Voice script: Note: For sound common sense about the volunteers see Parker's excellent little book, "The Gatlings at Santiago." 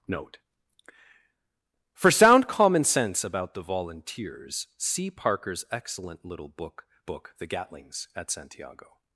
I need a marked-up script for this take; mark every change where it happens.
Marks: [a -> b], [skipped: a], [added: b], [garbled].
Note: For sound common sense about the volunteers see Parker's excellent little book, [added: book] "The Gatlings at Santiago."